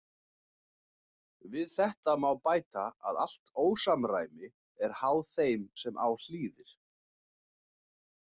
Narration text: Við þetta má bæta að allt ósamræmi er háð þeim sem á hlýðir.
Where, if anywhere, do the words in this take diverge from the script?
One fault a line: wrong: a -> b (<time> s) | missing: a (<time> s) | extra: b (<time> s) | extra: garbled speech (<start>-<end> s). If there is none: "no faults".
no faults